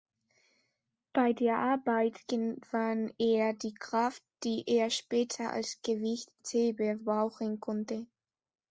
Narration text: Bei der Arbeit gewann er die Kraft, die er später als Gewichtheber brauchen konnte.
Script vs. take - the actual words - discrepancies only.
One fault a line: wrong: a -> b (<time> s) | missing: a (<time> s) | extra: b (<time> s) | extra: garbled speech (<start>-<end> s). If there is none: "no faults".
no faults